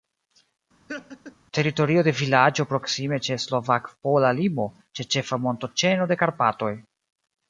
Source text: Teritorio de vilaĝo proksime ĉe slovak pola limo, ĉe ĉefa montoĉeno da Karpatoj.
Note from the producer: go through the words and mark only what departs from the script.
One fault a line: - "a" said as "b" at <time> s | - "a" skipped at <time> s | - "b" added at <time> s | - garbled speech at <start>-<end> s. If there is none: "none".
- "da" said as "de" at 6.1 s